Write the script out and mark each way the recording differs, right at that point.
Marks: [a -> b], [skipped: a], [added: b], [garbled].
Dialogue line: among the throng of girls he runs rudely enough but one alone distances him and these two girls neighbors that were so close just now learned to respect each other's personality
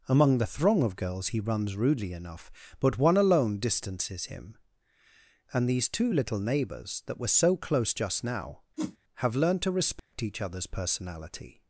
among the throng of girls he runs rudely enough but one alone distances him and these two [girls -> little] neighbors that were so close just now [added: have] learned to respect each other's personality